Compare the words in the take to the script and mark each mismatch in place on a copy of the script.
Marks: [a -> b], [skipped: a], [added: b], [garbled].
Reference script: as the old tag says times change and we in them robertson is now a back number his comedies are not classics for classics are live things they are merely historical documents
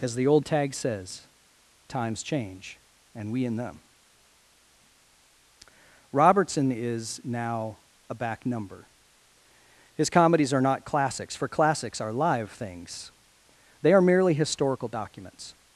as the old tag says times change and we in them robertson is now a back number his comedies are not classics for classics are live things they are merely historical documents